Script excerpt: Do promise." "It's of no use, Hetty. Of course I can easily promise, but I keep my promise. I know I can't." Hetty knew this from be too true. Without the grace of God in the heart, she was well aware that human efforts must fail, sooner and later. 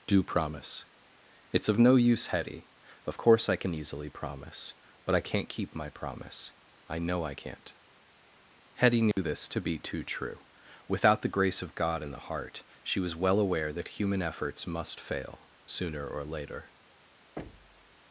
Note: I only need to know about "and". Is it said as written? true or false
false